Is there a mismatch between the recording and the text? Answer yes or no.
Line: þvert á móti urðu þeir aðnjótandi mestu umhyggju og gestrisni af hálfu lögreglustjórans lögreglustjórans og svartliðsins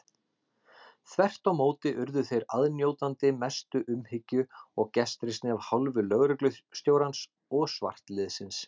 yes